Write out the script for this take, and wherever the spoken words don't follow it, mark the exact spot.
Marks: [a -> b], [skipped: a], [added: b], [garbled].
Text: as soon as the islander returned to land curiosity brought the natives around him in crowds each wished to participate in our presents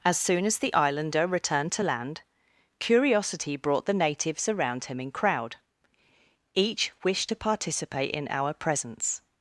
as soon as the islander returned to land curiosity brought the natives around him in [crowds -> crowd] each wished to participate in our presents